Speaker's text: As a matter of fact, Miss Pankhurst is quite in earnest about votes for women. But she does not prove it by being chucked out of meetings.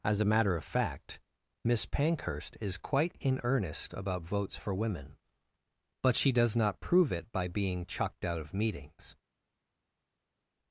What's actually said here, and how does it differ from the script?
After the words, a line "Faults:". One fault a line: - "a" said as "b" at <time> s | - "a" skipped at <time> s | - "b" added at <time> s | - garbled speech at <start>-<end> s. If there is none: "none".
As a matter of fact, Miss Pankhurst is quite in earnest about votes for women. But she does not prove it by being chucked out of meetings.
Faults:
none